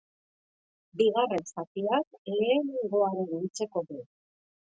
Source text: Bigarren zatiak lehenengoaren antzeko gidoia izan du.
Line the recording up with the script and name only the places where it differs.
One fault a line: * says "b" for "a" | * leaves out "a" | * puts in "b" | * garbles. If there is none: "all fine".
* leaves out "gidoia izan"